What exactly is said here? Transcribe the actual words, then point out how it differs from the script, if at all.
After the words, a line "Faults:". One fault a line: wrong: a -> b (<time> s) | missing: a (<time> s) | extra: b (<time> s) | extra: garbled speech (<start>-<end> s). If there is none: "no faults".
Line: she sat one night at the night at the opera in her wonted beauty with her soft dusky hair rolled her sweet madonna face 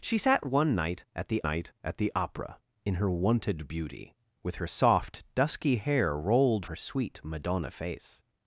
she sat one night at the night at the opera in her wonted beauty with her soft dusky hair rolled her sweet madonna face
Faults:
no faults